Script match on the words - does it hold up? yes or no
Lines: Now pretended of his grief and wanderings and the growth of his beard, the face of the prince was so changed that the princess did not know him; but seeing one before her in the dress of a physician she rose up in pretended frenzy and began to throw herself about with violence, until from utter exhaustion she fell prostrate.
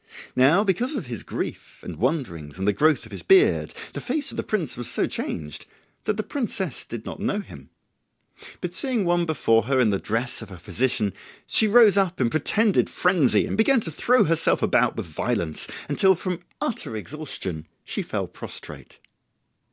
no